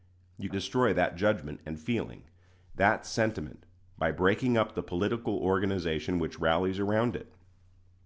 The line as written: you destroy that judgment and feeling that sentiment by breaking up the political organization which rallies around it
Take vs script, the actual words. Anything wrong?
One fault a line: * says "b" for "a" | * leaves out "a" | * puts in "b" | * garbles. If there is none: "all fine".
all fine